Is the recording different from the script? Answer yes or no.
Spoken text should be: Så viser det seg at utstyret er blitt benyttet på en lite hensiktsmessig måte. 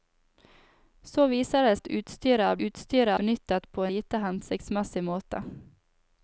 yes